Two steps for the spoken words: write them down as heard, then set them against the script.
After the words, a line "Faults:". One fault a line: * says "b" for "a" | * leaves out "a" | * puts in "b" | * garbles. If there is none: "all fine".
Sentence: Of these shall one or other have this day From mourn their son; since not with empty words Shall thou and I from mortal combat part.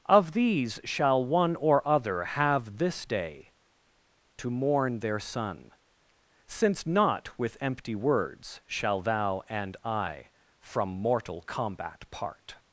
Of these shall one or other have this day To mourn their son; since not with empty words Shall thou and I from mortal combat part.
Faults:
* says "To" for "From"